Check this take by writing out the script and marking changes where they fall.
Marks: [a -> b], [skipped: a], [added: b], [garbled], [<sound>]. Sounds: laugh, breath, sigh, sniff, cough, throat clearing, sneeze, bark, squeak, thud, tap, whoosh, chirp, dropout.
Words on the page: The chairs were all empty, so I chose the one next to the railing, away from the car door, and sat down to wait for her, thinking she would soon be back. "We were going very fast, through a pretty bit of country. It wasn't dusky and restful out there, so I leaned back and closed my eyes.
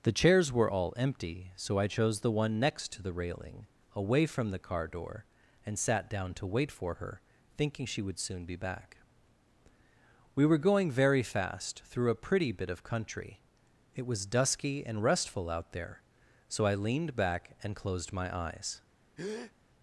The chairs were all empty, so I chose the one next to the railing, away from the car door, and sat down to wait for her, thinking she would soon be back. "We were going very fast, through a pretty bit of country. It [wasn't -> was] dusky and restful out there, so I leaned back and closed my eyes. [breath]